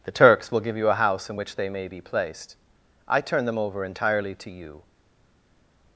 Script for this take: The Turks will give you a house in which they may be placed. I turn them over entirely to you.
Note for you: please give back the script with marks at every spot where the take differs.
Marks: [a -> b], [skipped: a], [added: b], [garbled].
The Turks will give you a house in which they may be placed. I turn them over entirely to you.